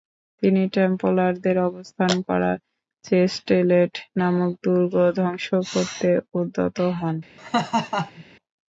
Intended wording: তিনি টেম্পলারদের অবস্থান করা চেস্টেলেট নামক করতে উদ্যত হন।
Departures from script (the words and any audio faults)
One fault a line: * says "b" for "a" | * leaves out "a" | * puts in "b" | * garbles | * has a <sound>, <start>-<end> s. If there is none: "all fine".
* puts in "দুর্গ ধ্বংস"
* has a laugh, 7.4-8.2 s